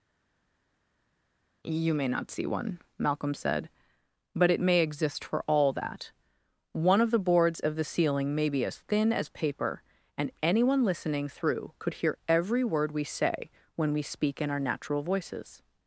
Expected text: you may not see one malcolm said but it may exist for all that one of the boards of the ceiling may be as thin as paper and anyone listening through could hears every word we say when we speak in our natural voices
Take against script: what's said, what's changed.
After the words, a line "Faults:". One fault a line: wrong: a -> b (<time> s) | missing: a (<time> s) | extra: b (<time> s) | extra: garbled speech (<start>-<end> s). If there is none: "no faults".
you may not see one malcolm said but it may exist for all that one of the boards of the ceiling may be as thin as paper and anyone listening through could hear every word we say when we speak in our natural voices
Faults:
wrong: hears -> hear (11.9 s)